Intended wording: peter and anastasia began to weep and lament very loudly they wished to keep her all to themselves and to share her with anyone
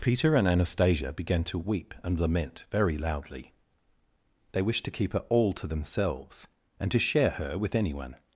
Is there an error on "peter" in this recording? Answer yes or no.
no